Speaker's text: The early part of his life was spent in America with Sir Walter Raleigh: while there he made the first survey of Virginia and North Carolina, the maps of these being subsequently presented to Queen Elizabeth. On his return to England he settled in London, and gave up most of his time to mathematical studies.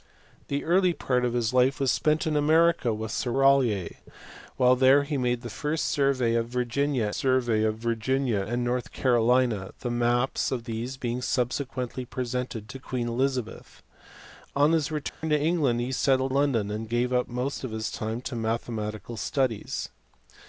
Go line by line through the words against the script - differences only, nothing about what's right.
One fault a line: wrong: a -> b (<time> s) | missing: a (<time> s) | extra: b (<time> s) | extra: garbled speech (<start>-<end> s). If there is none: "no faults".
missing: Walter (3.3 s)
extra: survey of Virginia (7.1 s)
missing: in (16.3 s)